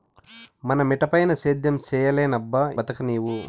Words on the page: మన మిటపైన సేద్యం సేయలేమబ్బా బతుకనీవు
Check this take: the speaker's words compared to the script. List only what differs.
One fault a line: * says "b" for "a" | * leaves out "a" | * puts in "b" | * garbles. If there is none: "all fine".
all fine